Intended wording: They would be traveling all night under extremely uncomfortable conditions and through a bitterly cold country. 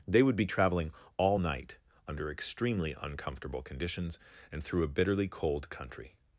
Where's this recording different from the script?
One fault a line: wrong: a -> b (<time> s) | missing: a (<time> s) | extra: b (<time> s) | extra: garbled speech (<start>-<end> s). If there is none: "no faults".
no faults